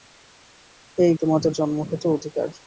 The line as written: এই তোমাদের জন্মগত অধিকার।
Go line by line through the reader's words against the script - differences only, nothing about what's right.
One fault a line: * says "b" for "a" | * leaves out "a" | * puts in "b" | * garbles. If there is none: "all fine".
all fine